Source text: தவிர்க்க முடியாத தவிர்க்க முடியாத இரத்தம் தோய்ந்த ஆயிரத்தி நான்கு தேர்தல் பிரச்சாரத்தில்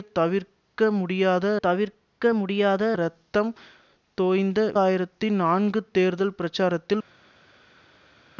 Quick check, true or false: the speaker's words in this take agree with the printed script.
true